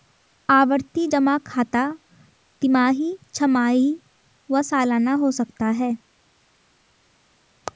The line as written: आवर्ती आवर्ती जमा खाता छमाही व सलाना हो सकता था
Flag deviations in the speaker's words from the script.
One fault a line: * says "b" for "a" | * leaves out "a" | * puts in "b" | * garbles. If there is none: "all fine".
* leaves out "आवर्ती"
* puts in "तिमाही"
* says "है" for "था"